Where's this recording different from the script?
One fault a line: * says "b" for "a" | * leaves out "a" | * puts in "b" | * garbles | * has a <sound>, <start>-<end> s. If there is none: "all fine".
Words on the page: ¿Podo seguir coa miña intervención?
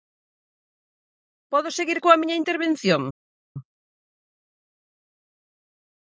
all fine